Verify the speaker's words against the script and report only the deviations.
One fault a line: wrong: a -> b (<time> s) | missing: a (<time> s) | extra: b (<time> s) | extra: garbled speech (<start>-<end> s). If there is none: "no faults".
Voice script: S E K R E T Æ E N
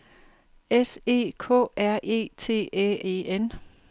no faults